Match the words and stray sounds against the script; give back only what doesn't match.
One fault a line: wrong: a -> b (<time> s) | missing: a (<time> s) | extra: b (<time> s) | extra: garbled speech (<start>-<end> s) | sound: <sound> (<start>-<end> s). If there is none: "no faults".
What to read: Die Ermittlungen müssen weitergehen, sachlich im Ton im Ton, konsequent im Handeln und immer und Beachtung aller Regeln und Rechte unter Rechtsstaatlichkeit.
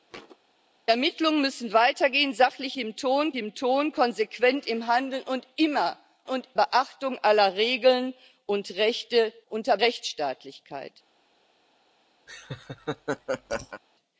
sound: thud (0.1-0.4 s)
sound: laugh (12.3-13.8 s)